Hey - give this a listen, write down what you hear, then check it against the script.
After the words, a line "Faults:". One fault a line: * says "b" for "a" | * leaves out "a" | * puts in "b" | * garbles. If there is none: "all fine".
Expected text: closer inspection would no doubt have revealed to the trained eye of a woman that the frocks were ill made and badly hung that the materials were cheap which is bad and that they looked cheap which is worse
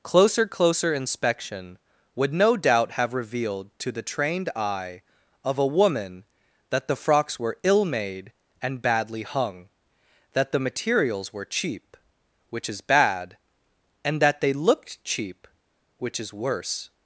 closer closer inspection would no doubt have revealed to the trained eye of a woman that the frocks were ill made and badly hung that the materials were cheap which is bad and that they looked cheap which is worse
Faults:
* puts in "closer"